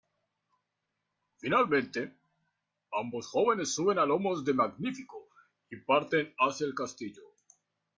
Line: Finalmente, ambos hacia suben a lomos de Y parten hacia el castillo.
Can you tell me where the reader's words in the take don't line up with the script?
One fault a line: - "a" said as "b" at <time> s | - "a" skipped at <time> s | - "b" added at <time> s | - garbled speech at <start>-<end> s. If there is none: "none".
- "hacia" said as "jóvenes" at 3.3 s
- "Magnífico" added at 4.5 s